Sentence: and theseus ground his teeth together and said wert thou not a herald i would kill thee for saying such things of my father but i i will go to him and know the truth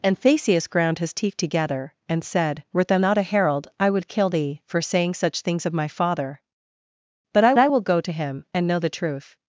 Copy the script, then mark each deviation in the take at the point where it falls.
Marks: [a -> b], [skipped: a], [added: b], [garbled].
and theseus ground his teeth together and said wert thou not a herald i would kill thee for saying such things of my father but i i will go to him and know the truth